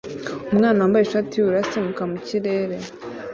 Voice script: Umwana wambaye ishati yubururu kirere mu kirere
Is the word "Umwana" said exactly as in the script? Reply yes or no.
yes